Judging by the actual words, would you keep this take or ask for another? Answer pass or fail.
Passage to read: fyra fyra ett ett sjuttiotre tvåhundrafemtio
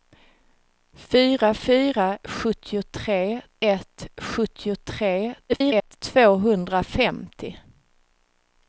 fail